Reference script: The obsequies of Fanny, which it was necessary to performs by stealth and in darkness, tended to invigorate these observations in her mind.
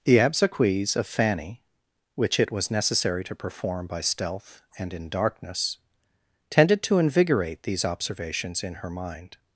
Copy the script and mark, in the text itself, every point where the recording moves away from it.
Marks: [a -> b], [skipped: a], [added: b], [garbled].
The obsequies of Fanny, which it was necessary to [performs -> perform] by stealth and in darkness, tended to invigorate these observations in her mind.